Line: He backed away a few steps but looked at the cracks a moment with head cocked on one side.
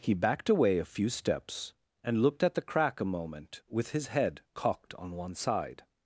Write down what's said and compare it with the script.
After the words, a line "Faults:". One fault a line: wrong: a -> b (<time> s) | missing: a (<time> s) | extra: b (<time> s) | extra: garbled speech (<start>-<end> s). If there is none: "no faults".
He backed away a few steps and looked at the crack a moment with his head cocked on one side.
Faults:
wrong: but -> and (2.0 s)
wrong: cracks -> crack (2.6 s)
extra: his (3.9 s)